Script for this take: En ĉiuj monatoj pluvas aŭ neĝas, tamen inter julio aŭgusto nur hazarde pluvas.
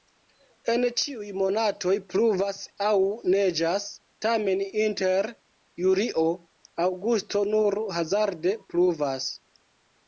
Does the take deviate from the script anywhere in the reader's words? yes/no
no